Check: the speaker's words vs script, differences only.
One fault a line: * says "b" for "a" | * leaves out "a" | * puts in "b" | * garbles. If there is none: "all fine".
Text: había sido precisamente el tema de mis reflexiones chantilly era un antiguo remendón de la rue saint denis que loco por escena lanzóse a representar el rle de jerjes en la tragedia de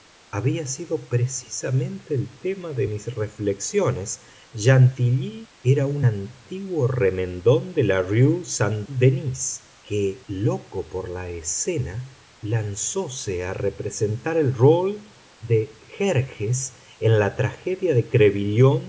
* puts in "la"